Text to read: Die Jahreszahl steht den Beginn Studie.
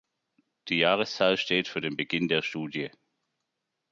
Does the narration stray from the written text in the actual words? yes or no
yes